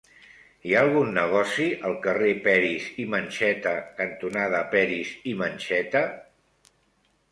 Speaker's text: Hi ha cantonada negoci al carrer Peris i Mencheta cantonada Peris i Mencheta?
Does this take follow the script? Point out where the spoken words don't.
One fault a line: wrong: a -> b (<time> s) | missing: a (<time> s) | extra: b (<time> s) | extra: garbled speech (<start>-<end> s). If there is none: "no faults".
wrong: cantonada -> algun (0.8 s)